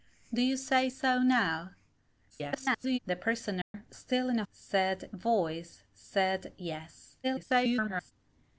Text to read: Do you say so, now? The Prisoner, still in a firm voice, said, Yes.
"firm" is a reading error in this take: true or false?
true